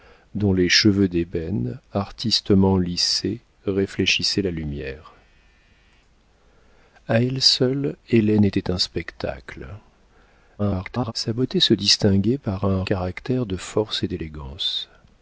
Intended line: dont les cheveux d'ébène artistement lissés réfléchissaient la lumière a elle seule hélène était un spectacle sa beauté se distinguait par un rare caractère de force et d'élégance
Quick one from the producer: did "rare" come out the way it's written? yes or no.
no